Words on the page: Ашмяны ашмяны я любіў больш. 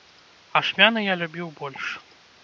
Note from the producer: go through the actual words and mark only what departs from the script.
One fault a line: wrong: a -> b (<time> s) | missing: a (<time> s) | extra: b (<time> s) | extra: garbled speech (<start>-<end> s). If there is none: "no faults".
missing: ашмяны (1.0 s)